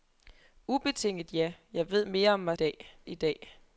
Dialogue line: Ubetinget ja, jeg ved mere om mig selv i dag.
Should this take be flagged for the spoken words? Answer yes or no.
yes